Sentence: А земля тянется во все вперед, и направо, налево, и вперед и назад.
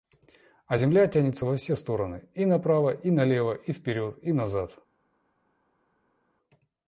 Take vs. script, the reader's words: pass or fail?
fail